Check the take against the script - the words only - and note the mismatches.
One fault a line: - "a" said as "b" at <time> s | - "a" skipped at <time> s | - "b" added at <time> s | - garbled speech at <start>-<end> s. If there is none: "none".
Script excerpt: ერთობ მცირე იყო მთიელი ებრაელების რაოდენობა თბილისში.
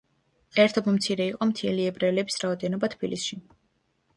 none